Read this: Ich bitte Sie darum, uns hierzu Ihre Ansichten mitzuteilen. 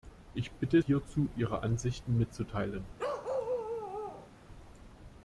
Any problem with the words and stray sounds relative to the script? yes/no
yes